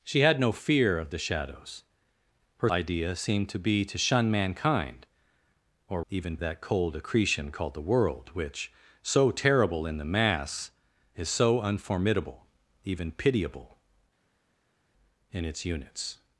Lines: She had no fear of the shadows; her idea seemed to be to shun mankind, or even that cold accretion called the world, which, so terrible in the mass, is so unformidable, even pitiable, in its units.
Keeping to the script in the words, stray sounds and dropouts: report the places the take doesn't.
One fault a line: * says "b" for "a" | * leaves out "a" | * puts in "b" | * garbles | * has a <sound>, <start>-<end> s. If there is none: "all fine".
all fine